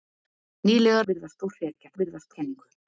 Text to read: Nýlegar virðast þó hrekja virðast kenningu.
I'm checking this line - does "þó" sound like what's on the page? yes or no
yes